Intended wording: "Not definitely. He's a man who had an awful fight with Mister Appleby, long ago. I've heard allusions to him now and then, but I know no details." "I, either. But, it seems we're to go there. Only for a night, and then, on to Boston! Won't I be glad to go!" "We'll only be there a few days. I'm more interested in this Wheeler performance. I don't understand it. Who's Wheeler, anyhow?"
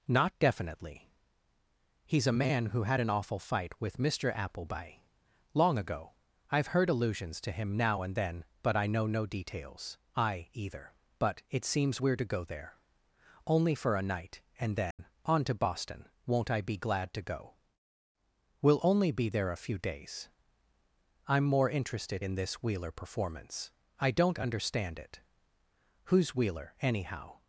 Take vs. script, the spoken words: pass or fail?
pass